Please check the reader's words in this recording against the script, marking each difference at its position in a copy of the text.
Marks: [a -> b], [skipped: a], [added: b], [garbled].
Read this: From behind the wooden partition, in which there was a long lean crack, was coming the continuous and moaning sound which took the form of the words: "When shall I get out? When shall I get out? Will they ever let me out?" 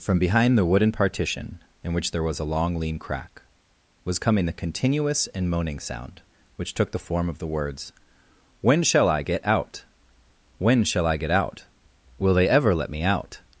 From behind the wooden partition, in which there was a long lean crack, was coming the continuous and moaning sound which took the form of the words: "When shall I get out? When shall I get out? Will they ever let me out?"